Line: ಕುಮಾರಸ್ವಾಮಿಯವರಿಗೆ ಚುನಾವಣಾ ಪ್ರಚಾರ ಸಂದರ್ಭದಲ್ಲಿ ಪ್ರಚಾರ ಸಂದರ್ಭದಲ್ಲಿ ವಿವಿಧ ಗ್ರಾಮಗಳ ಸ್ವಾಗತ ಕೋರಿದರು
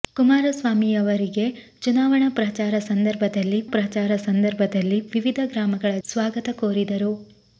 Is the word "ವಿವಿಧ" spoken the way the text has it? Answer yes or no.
yes